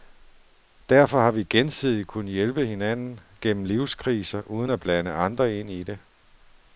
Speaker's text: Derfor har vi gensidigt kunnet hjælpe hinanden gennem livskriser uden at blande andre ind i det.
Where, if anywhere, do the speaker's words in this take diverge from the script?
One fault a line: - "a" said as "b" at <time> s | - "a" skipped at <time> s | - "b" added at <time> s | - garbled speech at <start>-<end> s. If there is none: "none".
none